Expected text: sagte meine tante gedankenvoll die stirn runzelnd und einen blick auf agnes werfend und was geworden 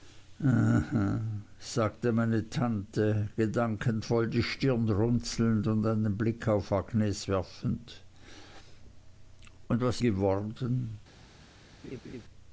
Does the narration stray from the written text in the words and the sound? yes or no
yes